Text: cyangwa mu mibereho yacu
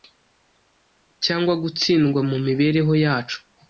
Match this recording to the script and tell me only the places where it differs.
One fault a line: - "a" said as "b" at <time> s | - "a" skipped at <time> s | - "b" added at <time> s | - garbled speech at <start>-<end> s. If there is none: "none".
- "gutsindwa" added at 1.6 s